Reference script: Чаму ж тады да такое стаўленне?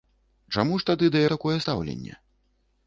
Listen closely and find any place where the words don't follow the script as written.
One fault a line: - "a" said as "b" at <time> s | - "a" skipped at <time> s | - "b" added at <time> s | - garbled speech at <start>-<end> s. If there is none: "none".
none